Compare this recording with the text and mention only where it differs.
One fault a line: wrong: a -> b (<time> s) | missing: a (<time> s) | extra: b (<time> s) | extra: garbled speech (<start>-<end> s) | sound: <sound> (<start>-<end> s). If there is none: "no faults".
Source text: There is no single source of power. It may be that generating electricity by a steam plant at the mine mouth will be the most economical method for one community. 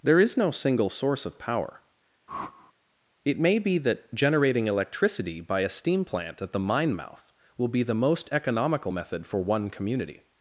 sound: whoosh (2.3-2.7 s)